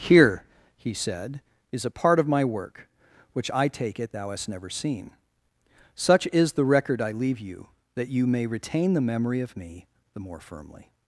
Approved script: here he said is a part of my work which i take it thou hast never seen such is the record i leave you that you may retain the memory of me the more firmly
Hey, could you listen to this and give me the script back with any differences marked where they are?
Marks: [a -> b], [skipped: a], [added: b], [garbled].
here he said is a part of my work which i take it thou hast never seen such is the record i leave you that you may retain the memory of me the more firmly